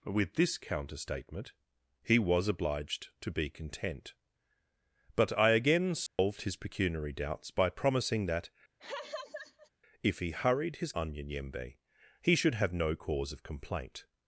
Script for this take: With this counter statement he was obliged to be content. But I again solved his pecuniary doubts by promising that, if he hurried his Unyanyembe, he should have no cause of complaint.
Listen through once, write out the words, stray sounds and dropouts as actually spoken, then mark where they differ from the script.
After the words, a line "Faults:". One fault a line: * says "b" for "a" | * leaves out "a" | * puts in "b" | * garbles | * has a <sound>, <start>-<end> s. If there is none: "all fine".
With this counter statement he was obliged to be content. But I again solved his pecuniary doubts by promising that, if he hurried his Unyanyembe, he should have no cause of complaint.
Faults:
* has a dropout, 6.1-6.2 s
* has a laugh, 8.8-9.7 s